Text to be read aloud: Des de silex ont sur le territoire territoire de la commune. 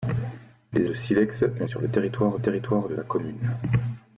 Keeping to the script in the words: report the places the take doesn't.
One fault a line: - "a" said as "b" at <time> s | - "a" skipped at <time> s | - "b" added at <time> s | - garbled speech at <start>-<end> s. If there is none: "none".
none